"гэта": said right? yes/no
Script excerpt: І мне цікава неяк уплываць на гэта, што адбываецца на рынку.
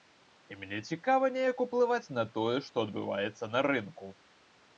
no